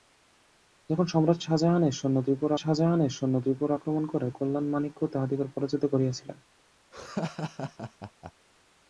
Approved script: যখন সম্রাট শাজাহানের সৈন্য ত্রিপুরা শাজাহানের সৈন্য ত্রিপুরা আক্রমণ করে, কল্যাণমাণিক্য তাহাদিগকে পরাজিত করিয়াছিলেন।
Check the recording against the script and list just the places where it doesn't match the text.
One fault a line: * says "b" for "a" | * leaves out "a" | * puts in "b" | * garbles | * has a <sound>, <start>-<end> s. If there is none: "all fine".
* has a laugh, 6.9-8.3 s